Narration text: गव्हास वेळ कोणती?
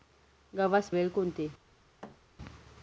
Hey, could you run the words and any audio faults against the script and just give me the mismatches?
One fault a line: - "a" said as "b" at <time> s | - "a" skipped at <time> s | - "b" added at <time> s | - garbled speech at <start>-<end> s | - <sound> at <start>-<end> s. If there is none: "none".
- thud at 2.0-2.2 s